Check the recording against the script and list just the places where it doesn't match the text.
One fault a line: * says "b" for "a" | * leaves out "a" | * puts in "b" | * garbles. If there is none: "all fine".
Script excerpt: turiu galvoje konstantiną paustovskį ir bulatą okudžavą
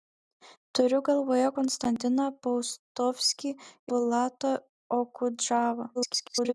* leaves out "ir"
* garbles